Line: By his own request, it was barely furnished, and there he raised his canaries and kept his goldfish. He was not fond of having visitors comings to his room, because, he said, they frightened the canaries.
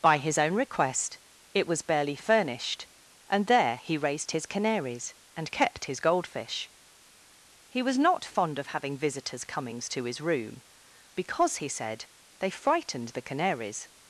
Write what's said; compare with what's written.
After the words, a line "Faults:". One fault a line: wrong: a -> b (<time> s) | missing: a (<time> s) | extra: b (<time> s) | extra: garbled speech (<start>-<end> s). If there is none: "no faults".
By his own request, it was barely furnished, and there he raised his canaries and kept his goldfish. He was not fond of having visitors comings to his room, because, he said, they frightened the canaries.
Faults:
no faults